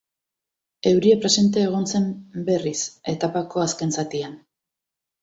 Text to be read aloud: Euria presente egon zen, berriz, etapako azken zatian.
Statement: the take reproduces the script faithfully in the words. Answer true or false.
true